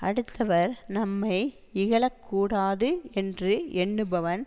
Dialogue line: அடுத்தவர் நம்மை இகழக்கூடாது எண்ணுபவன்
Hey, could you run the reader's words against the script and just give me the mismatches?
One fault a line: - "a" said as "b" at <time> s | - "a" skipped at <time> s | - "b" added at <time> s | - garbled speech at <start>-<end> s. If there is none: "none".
- "என்று" added at 3.1 s